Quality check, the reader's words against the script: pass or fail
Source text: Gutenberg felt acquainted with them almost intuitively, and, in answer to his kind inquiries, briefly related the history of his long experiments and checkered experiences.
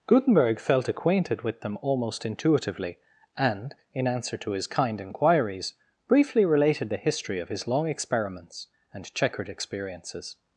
pass